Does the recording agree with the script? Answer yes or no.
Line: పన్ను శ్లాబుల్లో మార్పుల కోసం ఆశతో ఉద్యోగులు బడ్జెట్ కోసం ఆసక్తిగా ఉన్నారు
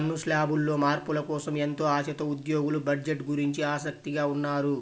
no